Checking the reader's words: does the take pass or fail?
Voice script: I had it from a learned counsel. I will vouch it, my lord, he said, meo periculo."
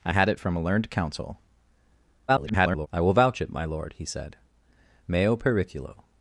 fail